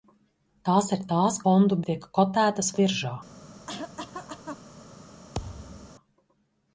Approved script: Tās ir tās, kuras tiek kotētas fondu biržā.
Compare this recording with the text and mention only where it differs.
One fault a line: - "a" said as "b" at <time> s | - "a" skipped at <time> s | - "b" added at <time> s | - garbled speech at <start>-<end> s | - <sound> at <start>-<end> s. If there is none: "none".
- "kuras" said as "fondu" at 1.5 s
- "fondu" skipped at 2.7 s
- cough at 3.7-4.6 s
- thud at 5.3-5.9 s